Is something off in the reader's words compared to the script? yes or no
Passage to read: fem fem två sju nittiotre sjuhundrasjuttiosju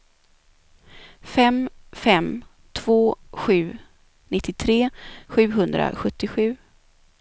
no